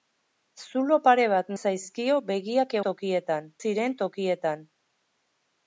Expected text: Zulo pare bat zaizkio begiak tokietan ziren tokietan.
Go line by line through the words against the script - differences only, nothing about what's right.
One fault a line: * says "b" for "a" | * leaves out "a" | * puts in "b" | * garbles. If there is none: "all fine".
all fine